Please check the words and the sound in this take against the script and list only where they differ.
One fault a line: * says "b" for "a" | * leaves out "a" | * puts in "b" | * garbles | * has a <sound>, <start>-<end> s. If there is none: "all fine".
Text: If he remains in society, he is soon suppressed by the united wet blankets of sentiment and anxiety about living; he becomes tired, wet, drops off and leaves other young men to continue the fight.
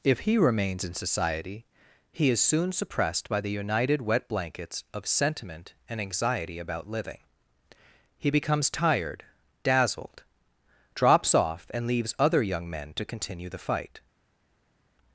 * says "dazzled" for "wet"